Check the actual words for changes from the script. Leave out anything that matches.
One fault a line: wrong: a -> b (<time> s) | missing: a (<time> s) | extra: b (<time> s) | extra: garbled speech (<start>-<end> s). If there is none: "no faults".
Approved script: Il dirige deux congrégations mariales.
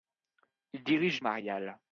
missing: deux congrégations (1.2 s)